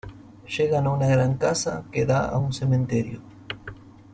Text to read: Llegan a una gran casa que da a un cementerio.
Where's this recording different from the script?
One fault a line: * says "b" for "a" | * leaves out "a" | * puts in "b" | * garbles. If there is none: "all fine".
all fine